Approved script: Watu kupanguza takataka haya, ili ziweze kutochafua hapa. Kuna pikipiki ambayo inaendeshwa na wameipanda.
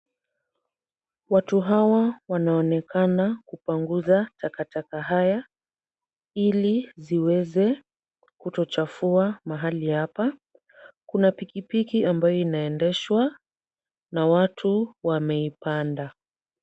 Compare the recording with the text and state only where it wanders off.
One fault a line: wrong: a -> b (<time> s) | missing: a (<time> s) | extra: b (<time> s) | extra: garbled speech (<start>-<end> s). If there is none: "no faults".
extra: hawa wanaonekana (1.6 s)
extra: mahali (9.4 s)
extra: watu (14.3 s)